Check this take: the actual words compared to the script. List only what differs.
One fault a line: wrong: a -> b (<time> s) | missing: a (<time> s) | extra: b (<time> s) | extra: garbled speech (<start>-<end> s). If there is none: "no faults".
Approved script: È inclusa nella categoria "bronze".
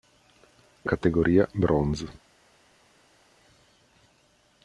missing: inclusa nella (0.9 s)